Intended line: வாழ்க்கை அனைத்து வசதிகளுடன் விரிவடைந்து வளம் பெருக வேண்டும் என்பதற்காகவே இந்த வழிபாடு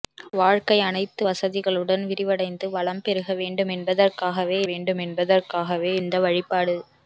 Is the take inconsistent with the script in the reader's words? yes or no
yes